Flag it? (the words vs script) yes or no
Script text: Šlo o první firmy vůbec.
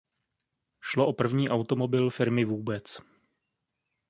yes